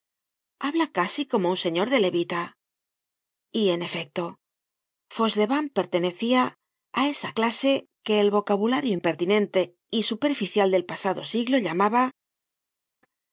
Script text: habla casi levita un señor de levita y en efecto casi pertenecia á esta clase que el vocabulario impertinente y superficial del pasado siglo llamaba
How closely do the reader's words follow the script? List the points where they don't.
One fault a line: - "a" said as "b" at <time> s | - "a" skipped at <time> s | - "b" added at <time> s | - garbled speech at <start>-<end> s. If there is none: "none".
- "levita" said as "como" at 1.3 s
- "casi" said as "fauchelevent" at 5.2 s
- "esta" said as "esa" at 7.1 s